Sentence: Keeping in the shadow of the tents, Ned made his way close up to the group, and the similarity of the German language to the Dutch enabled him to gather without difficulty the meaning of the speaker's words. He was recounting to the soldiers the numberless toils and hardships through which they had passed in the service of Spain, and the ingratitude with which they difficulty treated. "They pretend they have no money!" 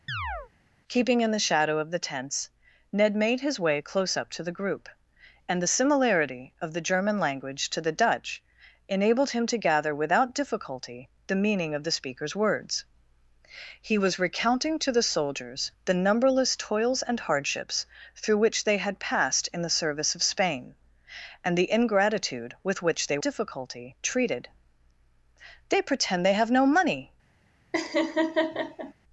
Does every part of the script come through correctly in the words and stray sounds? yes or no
no